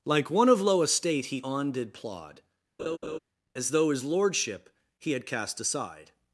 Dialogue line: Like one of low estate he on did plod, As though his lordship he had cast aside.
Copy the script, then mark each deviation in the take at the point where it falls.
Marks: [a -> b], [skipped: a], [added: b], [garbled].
Like one of low estate he on did plod, As though his lordship he had cast aside.